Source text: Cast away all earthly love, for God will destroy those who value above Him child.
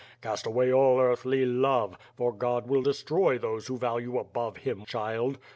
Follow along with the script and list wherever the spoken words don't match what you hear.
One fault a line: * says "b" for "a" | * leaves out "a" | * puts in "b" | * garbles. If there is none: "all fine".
all fine